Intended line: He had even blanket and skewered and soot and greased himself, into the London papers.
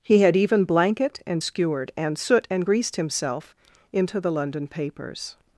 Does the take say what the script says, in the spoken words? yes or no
yes